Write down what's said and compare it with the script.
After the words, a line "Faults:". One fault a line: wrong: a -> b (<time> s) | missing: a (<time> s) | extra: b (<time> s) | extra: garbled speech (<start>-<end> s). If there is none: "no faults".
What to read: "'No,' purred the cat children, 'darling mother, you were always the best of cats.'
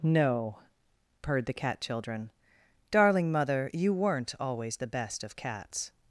"'No,' purred the cat children, 'darling mother, you weren't always the best of cats.'
Faults:
wrong: were -> weren't (3.9 s)